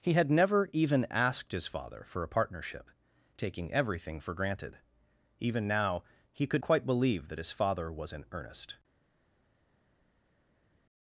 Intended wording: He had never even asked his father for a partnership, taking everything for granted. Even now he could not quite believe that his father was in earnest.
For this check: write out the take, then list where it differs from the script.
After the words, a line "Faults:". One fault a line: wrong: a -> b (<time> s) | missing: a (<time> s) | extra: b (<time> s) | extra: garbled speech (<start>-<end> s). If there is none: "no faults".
He had never even asked his father for a partnership, taking everything for granted. Even now he could quite believe that his father was in earnest.
Faults:
missing: not (6.6 s)